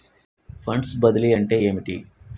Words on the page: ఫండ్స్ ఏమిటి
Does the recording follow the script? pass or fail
fail